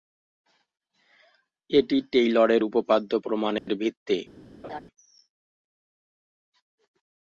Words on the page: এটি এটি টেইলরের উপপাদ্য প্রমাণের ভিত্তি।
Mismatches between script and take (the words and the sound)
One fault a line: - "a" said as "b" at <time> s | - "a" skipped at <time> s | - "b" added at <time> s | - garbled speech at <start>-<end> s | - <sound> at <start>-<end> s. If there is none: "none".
- "এটি" skipped at 2.0 s
- dropout at 3.6-3.7 s
- laugh at 4.6-4.8 s